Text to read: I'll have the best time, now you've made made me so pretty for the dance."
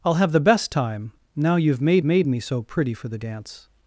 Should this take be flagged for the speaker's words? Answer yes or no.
no